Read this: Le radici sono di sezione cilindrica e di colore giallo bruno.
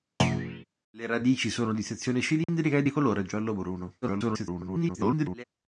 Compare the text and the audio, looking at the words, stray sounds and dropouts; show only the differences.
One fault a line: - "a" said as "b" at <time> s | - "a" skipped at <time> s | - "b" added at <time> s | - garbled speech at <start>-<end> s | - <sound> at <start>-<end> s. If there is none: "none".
- thud at 0.2-0.6 s
- dropout at 2.4-2.5 s
- garbled speech at 4.0-5.4 s